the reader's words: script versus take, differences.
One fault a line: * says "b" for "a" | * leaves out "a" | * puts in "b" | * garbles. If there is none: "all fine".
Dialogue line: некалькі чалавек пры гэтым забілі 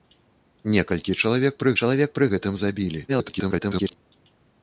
* puts in "чалавек пры"
* garbles